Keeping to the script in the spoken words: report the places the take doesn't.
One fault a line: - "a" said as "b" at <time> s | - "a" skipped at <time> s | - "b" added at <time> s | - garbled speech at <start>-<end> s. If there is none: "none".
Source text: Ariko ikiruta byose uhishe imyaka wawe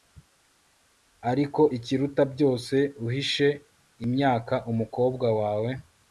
- "umukobwa" added at 4.7 s